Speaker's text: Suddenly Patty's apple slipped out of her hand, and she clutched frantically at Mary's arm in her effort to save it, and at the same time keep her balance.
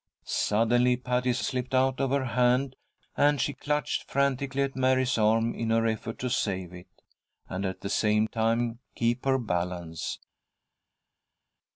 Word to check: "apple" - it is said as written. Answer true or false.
false